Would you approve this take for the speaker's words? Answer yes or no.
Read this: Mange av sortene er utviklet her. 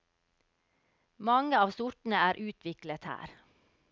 yes